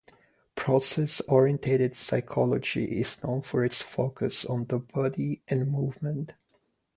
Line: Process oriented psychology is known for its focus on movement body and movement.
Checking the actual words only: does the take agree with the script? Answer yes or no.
no